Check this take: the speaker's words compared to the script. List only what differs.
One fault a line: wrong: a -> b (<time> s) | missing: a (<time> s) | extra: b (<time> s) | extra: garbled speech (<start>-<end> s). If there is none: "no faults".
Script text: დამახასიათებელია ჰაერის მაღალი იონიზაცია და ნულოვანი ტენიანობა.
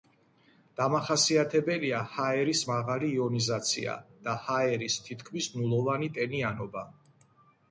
extra: ჰაერის თითქმის (4.5 s)